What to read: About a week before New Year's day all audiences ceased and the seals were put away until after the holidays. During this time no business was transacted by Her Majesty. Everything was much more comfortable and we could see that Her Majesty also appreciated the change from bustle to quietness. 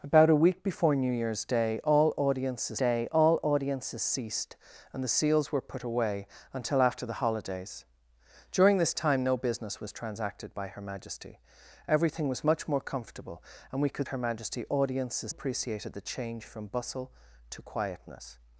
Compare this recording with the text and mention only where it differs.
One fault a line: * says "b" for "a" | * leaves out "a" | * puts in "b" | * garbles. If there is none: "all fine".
* puts in "day all audiences"
* leaves out "see that"
* says "audiences" for "also"